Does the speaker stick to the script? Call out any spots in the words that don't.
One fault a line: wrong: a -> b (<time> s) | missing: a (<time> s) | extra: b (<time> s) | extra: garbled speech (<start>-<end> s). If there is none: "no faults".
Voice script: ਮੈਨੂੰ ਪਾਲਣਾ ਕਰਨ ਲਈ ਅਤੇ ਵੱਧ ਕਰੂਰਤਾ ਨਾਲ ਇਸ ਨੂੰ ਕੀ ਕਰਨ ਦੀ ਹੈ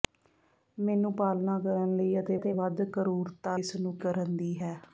extra: ਅਤੇ (2.4 s)
missing: ਨਾਲ (3.6 s)
missing: ਕੀ (4.0 s)